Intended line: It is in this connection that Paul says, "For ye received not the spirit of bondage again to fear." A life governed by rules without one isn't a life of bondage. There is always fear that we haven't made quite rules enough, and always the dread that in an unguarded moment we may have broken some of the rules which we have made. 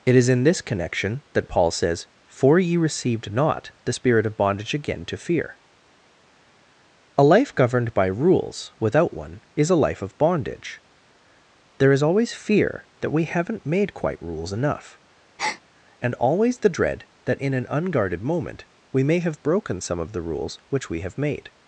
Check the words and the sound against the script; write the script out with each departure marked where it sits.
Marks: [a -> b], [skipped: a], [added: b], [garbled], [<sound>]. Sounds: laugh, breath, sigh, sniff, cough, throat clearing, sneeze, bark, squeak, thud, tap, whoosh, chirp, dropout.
It is in this connection that Paul says, "For ye received not the spirit of bondage again to fear." A life governed by rules without one [isn't -> is] a life of bondage. There is always fear that we haven't made quite rules enough, [breath] and always the dread that in an unguarded moment we may have broken some of the rules which we have made.